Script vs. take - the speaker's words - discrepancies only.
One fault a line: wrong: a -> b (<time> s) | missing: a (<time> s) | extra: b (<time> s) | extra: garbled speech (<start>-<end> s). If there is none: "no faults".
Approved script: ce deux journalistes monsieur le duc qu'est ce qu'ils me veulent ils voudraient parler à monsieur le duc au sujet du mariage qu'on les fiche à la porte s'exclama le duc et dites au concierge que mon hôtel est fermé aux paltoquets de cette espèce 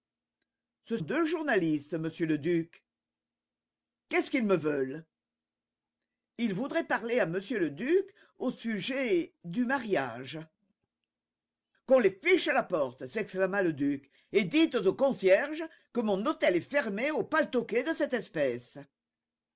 no faults